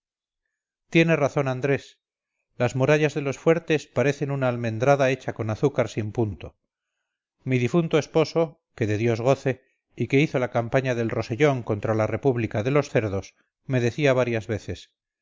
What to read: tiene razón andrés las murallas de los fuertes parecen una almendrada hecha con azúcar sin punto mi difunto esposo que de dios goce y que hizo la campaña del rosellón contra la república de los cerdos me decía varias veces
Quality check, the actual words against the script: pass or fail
pass